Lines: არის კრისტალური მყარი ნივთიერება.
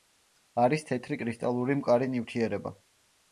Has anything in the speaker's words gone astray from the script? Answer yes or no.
yes